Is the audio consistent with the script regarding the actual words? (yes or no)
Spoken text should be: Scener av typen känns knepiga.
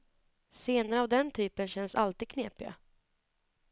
no